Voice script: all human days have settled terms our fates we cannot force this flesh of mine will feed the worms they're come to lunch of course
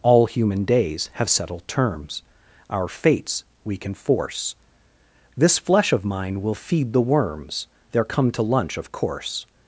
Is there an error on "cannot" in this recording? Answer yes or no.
yes